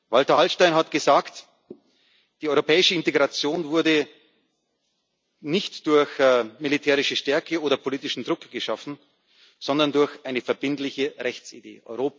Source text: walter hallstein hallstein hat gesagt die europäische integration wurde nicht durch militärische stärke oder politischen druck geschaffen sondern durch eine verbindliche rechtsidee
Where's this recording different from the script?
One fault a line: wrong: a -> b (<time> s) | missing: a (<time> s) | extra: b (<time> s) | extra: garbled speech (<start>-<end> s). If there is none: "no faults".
missing: hallstein (0.7 s)